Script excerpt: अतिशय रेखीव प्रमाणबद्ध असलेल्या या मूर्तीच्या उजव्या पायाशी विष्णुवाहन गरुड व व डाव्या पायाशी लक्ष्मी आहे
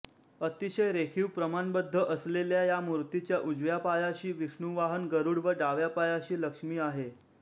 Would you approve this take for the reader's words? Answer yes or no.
no